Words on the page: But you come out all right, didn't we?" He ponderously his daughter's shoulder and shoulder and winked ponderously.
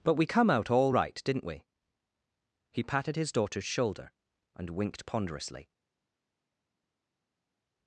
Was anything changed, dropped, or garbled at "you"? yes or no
yes